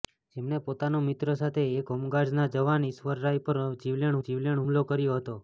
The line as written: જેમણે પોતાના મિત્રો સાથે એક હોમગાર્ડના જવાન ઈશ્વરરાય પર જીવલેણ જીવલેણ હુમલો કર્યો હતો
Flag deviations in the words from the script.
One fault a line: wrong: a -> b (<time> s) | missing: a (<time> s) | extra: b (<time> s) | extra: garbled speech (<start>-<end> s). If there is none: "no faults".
no faults